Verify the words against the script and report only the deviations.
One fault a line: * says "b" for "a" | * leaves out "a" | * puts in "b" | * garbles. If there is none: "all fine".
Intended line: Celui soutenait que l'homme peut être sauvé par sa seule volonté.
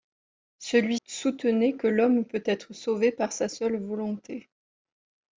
all fine